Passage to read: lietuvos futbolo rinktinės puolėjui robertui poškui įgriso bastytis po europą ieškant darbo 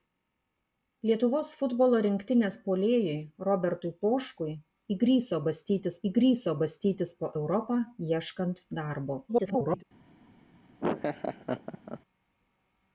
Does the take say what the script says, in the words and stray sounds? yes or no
no